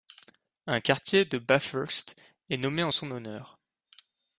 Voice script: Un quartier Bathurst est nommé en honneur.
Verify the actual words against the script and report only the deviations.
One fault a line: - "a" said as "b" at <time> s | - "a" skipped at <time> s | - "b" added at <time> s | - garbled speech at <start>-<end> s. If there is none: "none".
- "de" added at 1.2 s
- "son" added at 2.9 s